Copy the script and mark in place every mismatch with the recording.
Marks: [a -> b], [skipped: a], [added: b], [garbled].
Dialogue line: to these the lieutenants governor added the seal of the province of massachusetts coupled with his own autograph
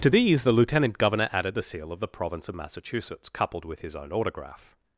to these the [lieutenants -> lieutenant] governor added the seal of the province of massachusetts coupled with his own autograph